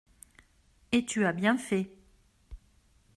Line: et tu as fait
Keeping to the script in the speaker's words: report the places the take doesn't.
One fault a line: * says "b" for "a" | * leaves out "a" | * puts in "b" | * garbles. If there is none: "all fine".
* puts in "bien"